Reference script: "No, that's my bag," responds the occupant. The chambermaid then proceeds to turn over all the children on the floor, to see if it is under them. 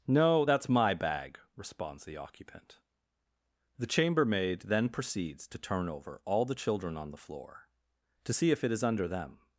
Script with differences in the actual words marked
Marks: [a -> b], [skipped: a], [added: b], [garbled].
"No, that's my bag," responds the occupant. The chambermaid then proceeds to turn over all the children on the floor, to see if it is under them.